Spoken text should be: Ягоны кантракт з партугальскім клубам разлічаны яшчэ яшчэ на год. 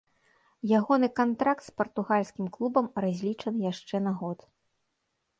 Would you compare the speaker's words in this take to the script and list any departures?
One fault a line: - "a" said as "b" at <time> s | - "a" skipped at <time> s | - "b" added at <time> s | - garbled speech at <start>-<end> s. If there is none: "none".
- "яшчэ" skipped at 4.0 s